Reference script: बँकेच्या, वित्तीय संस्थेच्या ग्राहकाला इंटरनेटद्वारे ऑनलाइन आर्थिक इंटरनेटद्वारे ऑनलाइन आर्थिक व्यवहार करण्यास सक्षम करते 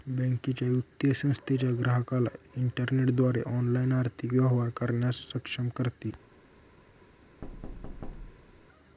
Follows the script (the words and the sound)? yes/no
no